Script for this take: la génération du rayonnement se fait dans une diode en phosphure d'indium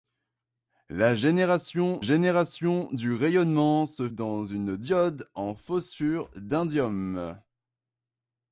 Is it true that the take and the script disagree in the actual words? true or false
true